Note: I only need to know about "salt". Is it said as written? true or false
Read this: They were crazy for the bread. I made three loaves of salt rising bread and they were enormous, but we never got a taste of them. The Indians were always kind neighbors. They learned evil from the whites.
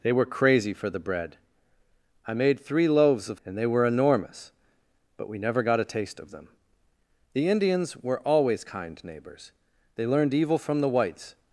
false